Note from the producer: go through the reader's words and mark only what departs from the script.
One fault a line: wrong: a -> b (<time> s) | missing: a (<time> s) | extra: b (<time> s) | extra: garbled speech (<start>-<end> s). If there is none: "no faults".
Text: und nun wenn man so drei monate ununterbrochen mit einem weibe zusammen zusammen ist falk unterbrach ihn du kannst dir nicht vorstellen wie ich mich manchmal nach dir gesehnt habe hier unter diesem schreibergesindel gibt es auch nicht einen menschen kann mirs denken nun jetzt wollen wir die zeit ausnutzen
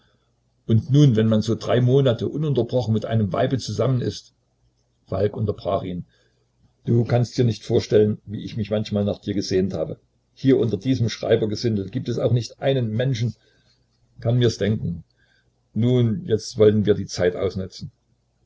missing: zusammen (4.0 s)